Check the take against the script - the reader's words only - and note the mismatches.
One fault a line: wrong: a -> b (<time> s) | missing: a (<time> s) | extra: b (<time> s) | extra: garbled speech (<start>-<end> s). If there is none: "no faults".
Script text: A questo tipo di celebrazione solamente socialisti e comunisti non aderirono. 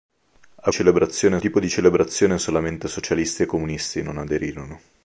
wrong: questo -> celebrazione (0.7 s)